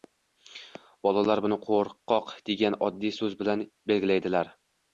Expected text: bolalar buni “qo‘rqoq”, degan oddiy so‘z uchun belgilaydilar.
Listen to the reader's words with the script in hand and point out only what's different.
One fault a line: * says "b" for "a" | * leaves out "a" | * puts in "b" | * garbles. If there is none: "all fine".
* says "bilan" for "uchun"